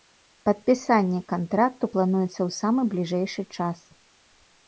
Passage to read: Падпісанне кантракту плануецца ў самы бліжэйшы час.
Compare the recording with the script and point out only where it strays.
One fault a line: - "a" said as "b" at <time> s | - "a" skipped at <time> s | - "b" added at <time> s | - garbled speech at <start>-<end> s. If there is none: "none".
none